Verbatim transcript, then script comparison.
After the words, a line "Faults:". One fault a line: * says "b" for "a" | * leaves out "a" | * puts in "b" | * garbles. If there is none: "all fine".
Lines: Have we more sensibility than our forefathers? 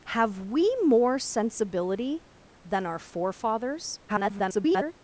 Have we more sensibility than our forefathers? [garbled]
Faults:
* garbles